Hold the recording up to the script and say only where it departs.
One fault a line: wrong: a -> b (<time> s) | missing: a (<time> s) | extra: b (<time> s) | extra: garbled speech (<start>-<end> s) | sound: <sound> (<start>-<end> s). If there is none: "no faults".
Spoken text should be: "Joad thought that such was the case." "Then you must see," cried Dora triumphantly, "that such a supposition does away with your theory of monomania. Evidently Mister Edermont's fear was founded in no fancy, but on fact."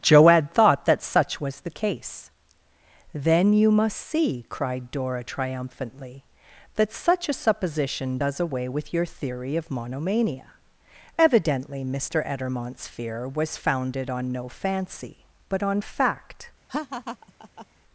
wrong: in -> on (14.1 s)
sound: laugh (16.7-17.7 s)